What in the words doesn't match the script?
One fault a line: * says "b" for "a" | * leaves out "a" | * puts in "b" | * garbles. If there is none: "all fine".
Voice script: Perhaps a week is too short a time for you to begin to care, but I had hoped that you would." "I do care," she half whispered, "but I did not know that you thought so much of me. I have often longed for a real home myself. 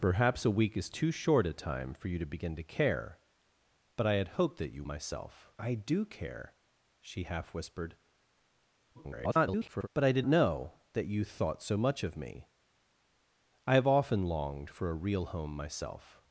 * says "myself" for "would"
* garbles
* leaves out "not"